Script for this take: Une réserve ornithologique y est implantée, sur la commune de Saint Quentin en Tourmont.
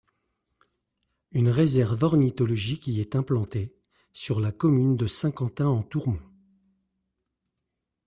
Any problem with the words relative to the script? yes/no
no